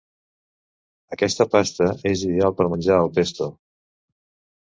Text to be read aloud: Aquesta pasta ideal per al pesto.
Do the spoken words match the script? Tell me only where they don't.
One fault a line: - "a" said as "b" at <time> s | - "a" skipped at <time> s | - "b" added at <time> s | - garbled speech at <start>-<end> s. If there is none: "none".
- "és" added at 2.1 s
- "menjar" added at 2.7 s